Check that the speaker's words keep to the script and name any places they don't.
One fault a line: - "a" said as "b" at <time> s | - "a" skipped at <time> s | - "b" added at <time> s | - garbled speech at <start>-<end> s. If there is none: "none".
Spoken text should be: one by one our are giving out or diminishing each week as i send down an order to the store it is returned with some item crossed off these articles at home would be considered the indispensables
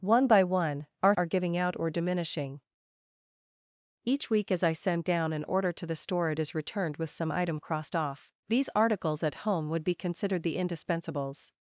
none